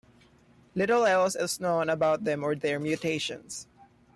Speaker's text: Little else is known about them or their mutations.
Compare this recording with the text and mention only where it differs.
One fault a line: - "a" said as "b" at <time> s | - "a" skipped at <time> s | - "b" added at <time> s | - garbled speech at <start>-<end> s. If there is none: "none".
none